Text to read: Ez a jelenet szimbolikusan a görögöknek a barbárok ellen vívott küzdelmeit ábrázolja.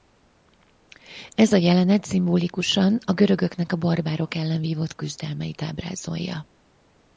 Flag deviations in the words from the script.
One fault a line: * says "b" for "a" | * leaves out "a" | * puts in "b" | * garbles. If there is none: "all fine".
all fine